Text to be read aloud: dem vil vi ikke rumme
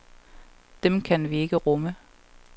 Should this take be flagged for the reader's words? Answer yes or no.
yes